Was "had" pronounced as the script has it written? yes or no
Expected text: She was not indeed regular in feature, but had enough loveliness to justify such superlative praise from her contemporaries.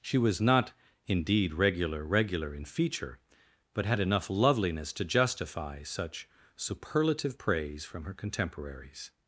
yes